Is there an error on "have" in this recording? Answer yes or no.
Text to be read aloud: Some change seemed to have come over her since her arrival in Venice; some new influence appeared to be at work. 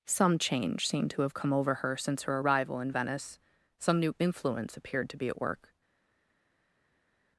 no